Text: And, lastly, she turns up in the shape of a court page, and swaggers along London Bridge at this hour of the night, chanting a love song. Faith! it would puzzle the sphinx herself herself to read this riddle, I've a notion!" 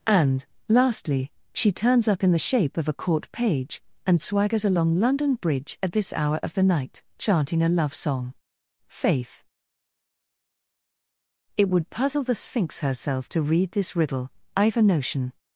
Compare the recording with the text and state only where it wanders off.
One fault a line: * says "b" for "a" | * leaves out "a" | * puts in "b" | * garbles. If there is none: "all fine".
* leaves out "herself"